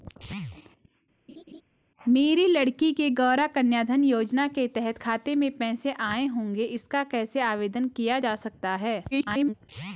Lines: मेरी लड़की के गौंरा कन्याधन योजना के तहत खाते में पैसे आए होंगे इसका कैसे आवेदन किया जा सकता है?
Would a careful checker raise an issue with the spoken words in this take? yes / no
yes